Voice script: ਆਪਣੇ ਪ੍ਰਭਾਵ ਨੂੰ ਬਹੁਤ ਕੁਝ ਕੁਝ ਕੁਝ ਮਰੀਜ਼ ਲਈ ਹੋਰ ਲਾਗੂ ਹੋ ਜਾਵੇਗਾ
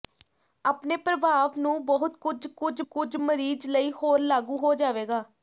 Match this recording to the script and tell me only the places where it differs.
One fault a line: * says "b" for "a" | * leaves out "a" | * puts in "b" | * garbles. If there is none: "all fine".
all fine